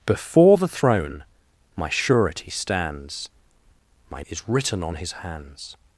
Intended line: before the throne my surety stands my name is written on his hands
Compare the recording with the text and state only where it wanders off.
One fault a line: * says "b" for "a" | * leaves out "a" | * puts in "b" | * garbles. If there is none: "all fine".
* leaves out "name"